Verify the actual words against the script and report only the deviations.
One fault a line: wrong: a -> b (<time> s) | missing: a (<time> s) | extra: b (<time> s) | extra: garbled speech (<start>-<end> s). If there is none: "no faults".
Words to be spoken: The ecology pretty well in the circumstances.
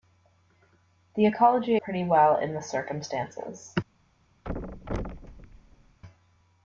no faults